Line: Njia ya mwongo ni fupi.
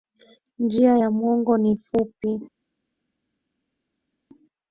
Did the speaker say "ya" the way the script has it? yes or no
yes